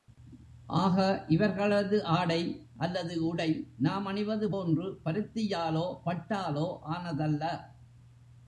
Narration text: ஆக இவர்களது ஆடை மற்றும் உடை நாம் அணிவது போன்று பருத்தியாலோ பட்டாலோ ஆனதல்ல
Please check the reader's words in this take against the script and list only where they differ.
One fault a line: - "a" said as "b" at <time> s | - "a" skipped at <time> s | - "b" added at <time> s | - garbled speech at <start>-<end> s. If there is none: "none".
- "மற்றும்" said as "அல்லது" at 2.8 s